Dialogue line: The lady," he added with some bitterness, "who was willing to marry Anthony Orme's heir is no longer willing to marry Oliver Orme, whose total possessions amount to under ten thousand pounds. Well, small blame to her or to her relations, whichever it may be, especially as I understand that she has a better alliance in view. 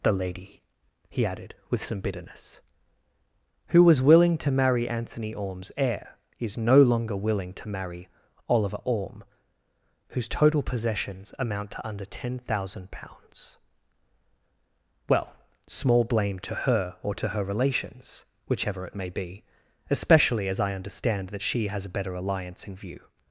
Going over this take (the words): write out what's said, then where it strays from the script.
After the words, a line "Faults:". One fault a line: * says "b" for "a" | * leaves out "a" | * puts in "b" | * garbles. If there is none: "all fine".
The lady," he added with some bitterness, "who was willing to marry Anthony Orme's heir is no longer willing to marry Oliver Orme, whose total possessions amount to under ten thousand pounds. Well, small blame to her or to her relations, whichever it may be, especially as I understand that she has a better alliance in view.
Faults:
all fine